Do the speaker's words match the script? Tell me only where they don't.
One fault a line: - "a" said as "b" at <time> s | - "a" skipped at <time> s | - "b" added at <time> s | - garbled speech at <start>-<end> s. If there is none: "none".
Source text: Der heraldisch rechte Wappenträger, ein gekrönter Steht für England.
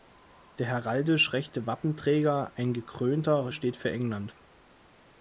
none